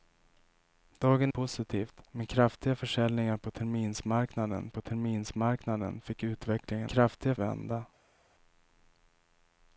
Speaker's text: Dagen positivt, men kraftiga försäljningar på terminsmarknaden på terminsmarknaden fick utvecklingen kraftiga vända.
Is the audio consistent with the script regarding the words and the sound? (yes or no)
yes